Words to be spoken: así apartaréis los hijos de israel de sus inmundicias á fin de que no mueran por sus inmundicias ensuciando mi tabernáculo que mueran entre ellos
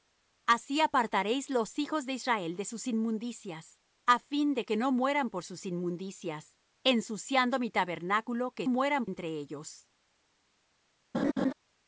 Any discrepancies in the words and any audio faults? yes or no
yes